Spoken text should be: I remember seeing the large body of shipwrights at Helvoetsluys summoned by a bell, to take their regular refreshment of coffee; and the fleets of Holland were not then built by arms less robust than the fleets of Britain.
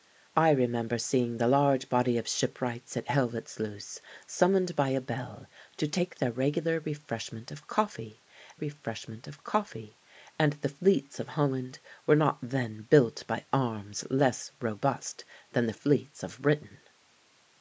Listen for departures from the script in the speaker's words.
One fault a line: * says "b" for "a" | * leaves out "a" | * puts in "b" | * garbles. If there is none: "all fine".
* puts in "refreshment of coffee"